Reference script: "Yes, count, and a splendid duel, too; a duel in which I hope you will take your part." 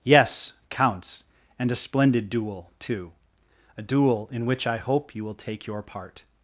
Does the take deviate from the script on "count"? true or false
true